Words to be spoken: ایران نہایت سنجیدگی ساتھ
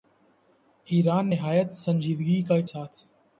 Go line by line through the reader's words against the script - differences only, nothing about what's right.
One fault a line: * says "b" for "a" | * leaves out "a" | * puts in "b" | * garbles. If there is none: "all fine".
all fine